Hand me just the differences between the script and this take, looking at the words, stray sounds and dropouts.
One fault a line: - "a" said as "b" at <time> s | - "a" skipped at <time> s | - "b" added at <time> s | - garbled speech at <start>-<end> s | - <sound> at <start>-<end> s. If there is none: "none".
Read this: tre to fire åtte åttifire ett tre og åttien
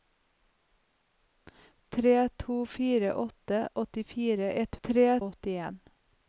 none